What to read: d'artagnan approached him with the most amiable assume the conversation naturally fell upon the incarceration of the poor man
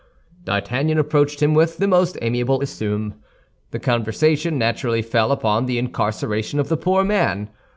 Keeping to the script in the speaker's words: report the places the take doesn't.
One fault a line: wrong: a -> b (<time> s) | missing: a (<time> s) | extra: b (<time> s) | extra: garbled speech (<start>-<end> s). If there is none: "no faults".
no faults